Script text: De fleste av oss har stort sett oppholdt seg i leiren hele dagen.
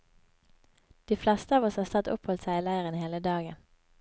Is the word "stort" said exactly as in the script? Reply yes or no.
no